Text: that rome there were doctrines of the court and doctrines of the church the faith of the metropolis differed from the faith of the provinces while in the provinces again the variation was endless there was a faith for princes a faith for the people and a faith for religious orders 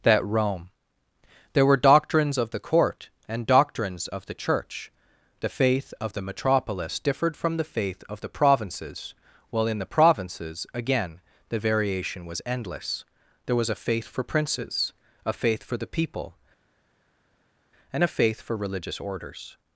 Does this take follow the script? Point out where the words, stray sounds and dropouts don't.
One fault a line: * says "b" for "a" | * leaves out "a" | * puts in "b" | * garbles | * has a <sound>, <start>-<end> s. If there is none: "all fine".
all fine